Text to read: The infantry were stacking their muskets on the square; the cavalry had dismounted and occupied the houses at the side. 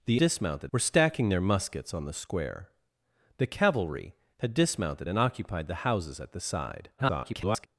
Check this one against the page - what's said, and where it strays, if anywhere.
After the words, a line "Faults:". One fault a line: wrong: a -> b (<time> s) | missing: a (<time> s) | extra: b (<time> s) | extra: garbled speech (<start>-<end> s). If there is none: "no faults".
The dismounted were stacking their muskets on the square; the cavalry had dismounted and occupied the houses at the side. [garbled]
Faults:
wrong: infantry -> dismounted (0.2 s)
extra: garbled speech (7.0-7.7 s)